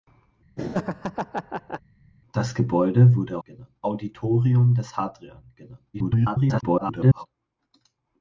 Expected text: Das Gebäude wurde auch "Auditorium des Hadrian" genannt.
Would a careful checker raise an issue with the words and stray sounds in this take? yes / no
yes